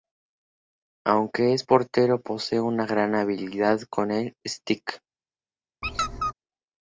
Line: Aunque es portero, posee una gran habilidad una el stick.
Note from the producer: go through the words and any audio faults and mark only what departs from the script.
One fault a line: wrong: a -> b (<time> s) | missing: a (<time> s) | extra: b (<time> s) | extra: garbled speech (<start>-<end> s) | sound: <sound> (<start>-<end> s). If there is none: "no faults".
wrong: una -> con (3.9 s)
sound: squeak (5.8-6.3 s)